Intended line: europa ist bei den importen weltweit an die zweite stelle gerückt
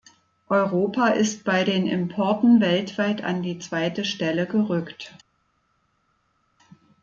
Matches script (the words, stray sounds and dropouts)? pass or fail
pass